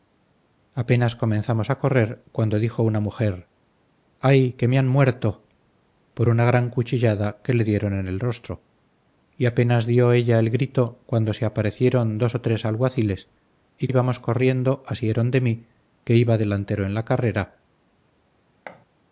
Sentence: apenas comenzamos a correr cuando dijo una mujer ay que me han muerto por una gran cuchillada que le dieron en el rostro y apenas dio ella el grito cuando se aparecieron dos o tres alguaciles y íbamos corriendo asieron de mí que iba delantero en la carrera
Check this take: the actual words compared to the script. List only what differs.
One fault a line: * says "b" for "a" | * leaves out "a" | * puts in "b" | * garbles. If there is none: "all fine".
all fine